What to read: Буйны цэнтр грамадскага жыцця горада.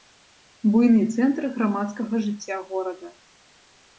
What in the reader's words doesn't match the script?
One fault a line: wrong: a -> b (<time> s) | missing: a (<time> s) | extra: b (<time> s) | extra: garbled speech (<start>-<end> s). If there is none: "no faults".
no faults